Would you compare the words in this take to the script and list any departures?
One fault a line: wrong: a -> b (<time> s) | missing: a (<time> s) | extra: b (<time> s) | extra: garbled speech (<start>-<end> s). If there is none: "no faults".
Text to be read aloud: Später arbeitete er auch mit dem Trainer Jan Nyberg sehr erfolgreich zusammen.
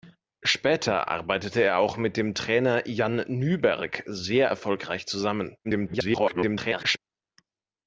extra: garbled speech (5.6-7.0 s)